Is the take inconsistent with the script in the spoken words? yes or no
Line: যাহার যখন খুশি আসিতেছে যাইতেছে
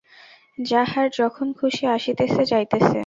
no